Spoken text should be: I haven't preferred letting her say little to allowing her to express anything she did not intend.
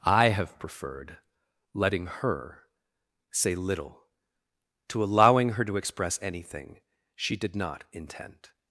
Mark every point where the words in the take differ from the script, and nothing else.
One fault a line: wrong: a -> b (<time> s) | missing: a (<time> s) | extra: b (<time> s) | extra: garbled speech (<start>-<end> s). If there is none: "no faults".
wrong: haven't -> have (0.3 s)